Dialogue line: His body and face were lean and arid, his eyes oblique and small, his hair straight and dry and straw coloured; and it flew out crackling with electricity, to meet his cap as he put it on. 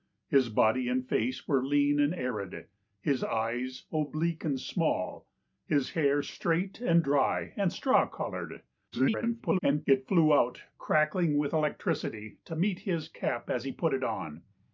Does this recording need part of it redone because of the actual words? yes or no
yes